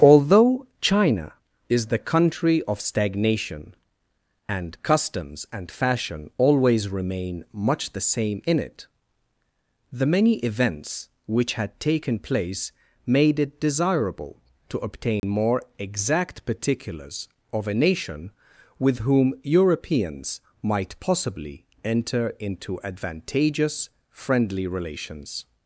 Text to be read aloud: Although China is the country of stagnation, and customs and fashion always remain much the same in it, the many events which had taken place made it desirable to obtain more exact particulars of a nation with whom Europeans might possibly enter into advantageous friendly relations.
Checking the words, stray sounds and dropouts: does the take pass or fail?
fail